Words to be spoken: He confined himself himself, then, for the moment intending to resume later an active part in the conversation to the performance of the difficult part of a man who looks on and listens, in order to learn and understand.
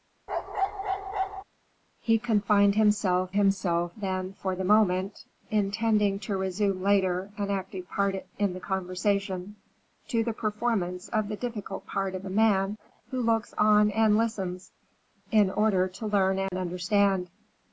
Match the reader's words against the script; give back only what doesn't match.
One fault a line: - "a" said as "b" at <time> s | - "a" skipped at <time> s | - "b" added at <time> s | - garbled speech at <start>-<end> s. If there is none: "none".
none